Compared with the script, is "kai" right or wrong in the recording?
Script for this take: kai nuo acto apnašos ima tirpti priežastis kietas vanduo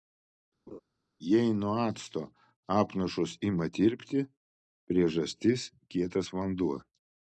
wrong